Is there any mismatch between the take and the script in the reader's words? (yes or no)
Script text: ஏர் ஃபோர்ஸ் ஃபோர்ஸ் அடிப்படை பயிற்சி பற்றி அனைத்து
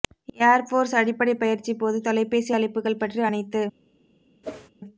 yes